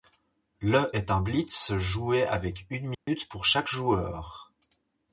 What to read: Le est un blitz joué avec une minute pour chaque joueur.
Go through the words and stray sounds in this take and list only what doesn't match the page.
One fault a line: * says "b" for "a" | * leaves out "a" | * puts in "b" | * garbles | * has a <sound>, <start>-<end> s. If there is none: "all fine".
* has a dropout, 2.9-3.1 s